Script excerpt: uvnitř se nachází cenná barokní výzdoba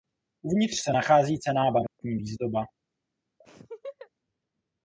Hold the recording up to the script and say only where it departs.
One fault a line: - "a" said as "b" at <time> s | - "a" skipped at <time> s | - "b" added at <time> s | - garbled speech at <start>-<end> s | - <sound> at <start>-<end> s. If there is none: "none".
- dropout at 1.9-2.0 s
- laugh at 3.4-4.1 s